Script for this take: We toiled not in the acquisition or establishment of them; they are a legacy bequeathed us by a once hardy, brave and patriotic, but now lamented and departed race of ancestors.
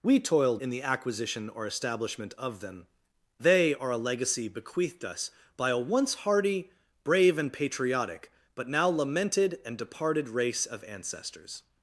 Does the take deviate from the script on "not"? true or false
true